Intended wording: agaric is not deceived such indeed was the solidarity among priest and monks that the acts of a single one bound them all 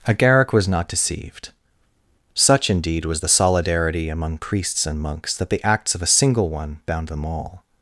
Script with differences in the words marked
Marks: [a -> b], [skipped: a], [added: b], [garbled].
agaric [is -> was] not deceived such indeed was the solidarity among [priest -> priests] and monks that the acts of a single one bound them all